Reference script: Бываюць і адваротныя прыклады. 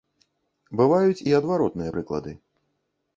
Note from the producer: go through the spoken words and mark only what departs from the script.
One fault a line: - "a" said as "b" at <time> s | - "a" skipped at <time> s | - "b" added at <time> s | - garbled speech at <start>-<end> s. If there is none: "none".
none